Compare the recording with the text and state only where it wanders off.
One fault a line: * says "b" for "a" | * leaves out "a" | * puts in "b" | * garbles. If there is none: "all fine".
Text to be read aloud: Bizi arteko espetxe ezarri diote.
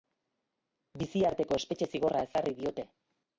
* puts in "zigorra"